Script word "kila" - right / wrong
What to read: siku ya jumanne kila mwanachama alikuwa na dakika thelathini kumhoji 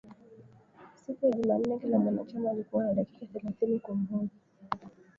right